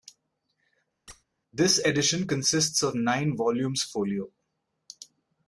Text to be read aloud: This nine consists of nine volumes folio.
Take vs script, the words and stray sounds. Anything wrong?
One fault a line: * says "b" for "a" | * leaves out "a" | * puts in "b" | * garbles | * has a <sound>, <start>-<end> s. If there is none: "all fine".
* has a squeak, 1.1-1.2 s
* says "edition" for "nine"